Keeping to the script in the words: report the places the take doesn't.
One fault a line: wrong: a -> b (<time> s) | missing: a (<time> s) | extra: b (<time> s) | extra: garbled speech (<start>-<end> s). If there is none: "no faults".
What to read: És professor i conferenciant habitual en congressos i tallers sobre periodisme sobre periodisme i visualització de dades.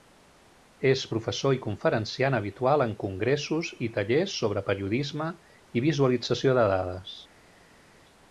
missing: sobre periodisme (5.3 s)